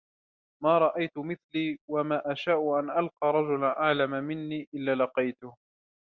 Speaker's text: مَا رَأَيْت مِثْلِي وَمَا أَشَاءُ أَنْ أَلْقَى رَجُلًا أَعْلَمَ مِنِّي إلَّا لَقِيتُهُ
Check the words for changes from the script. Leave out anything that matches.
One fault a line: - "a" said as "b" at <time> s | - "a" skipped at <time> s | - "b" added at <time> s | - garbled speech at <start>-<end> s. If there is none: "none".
none